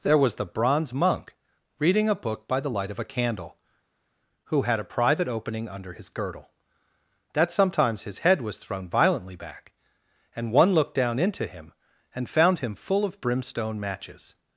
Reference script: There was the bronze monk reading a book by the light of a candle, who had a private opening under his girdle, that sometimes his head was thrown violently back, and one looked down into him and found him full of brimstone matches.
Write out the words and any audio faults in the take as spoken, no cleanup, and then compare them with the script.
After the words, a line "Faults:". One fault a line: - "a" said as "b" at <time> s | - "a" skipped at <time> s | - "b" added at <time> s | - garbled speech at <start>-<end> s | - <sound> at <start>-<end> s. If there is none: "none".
There was the bronze monk reading a book by the light of a candle, who had a private opening under his girdle, that sometimes his head was thrown violently back, and one looked down into him and found him full of brimstone matches.
Faults:
none